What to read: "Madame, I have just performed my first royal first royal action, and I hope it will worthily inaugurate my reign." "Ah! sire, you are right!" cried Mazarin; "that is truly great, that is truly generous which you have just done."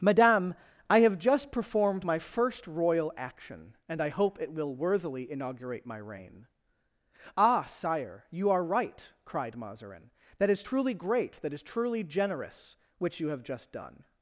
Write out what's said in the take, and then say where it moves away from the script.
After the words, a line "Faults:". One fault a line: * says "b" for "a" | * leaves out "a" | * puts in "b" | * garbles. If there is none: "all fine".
"Madame, I have just performed my first royal action, and I hope it will worthily inaugurate my reign." "Ah! sire, you are right!" cried Mazarin; "that is truly great, that is truly generous which you have just done."
Faults:
* leaves out "first royal"